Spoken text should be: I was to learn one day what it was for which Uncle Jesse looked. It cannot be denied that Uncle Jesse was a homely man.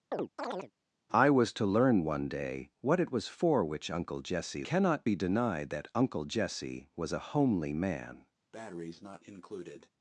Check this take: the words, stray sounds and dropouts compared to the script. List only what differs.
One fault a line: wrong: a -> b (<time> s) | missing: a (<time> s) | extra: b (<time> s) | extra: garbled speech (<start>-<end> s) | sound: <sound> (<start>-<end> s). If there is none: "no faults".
sound: chirp (0.1-0.7 s)
missing: looked It (4.6 s)
sound: breath (8.5-9.9 s)